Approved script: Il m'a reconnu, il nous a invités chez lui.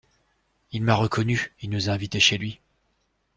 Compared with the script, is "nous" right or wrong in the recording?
right